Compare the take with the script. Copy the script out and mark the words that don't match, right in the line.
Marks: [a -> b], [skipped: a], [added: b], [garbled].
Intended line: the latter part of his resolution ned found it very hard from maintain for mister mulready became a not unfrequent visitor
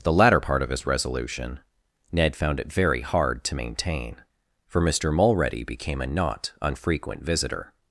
the latter part of his resolution ned found it very hard [from -> to] maintain for mister mulready became a not unfrequent visitor